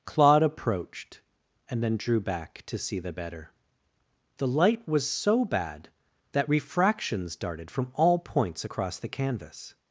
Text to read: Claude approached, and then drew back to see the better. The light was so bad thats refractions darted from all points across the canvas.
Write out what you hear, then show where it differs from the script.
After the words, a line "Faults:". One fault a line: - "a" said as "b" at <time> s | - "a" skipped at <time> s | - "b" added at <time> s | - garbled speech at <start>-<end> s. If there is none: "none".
Claude approached, and then drew back to see the better. The light was so bad that refractions darted from all points across the canvas.
Faults:
- "thats" said as "that" at 6.3 s